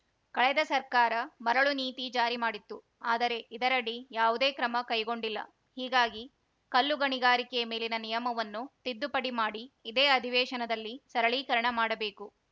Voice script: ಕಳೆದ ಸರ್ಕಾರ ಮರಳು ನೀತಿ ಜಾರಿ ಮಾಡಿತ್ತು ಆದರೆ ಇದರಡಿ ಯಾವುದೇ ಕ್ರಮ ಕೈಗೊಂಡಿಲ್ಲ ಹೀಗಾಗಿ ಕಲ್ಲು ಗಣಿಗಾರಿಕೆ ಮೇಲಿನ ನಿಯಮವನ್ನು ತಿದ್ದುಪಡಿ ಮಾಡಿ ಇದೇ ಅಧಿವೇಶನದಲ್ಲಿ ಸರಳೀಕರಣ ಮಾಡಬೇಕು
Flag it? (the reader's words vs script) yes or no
no